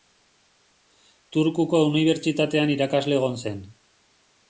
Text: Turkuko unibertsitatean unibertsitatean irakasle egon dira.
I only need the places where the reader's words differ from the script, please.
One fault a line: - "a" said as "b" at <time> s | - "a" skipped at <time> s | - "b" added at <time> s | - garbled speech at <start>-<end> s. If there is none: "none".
- "unibertsitatean" skipped at 2.8 s
- "dira" said as "zen" at 3.5 s